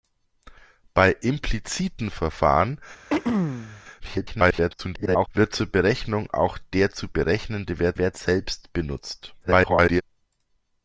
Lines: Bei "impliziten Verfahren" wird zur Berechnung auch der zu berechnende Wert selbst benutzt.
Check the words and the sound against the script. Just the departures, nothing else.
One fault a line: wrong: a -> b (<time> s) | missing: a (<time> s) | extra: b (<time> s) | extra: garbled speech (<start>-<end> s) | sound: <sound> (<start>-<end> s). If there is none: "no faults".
sound: throat clearing (3.1-3.8 s)
extra: garbled speech (4.0-5.3 s)
extra: Wert (8.0 s)
extra: garbled speech (9.4-10.0 s)